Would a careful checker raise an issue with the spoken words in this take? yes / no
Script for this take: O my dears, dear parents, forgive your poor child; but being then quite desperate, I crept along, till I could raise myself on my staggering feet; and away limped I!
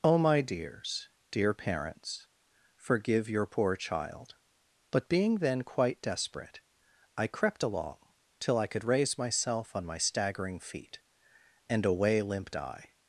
no